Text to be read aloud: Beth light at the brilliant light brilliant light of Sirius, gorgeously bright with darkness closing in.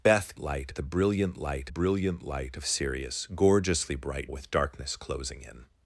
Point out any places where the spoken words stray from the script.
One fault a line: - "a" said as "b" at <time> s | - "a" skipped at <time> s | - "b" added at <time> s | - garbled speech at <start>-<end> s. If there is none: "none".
none